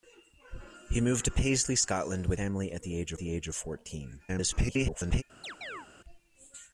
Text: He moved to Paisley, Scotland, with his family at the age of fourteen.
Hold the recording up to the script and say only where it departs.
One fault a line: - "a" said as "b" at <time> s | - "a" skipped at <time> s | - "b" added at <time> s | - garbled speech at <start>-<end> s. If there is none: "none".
- "his" skipped at 2.4 s
- "the age" added at 3.2 s
- garbled speech at 4.3-5.2 s